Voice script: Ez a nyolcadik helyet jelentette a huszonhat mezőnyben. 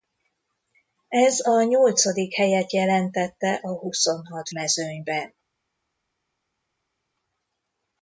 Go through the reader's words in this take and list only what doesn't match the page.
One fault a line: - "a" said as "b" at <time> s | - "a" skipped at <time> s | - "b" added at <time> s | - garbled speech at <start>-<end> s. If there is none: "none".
none